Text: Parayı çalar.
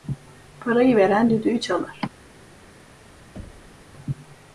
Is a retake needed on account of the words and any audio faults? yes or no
yes